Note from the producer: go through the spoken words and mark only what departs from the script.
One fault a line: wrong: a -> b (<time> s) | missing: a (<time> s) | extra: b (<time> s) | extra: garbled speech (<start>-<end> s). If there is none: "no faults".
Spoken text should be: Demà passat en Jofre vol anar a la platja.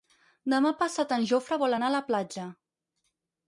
no faults